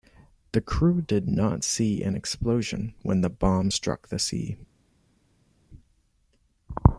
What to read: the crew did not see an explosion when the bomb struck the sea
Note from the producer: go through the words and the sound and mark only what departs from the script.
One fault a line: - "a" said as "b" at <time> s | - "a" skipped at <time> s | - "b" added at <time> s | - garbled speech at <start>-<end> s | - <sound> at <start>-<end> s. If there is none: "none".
none